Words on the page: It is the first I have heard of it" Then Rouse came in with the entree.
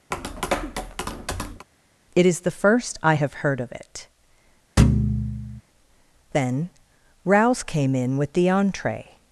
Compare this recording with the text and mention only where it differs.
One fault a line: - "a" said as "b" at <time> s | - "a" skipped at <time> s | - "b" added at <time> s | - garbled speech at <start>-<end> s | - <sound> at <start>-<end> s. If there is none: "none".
- tap at 0.1-1.7 s
- thud at 4.8-5.6 s